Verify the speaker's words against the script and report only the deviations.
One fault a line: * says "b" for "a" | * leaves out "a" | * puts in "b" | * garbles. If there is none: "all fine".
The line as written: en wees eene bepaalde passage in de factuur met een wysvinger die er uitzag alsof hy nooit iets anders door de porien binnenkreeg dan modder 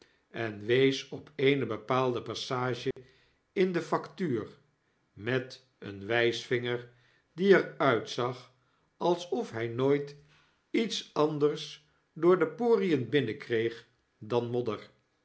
* puts in "op"